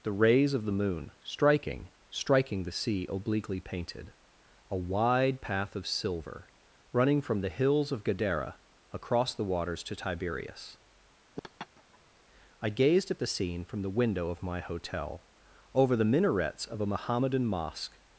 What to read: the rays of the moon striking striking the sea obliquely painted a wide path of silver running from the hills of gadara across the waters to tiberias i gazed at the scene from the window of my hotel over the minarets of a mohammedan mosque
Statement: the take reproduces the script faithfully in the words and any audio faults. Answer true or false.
false